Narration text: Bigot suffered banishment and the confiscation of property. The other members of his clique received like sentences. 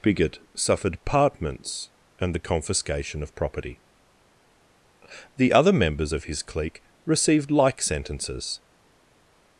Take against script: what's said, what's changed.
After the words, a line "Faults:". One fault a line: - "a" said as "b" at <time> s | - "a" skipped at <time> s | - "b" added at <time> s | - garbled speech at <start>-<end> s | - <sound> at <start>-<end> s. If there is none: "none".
Bigot suffered partments and the confiscation of property. The other members of his clique received like sentences.
Faults:
- "banishment" said as "partments" at 1.1 s